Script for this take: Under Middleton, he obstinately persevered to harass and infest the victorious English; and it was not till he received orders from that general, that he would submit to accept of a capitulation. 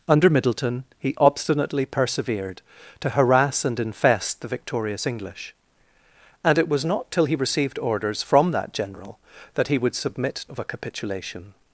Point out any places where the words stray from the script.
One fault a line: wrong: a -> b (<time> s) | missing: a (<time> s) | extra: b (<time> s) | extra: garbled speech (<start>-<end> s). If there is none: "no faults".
missing: to accept (10.4 s)